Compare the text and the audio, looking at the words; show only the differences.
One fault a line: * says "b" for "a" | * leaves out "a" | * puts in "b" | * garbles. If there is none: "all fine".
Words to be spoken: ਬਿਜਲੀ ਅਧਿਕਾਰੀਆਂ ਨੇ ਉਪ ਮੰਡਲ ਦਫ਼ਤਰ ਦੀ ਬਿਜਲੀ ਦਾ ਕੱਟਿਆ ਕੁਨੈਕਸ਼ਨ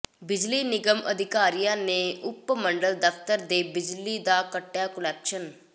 * puts in "ਨਿਗਮ"
* says "ਦੇ" for "ਦੀ"